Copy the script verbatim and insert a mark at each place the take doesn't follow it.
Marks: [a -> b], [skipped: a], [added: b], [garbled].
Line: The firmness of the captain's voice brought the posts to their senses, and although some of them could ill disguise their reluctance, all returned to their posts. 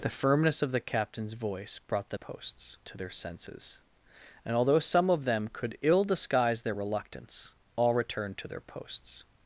The firmness of the captain's voice brought the posts to their senses, and although some of them could ill disguise their reluctance, all returned to their posts.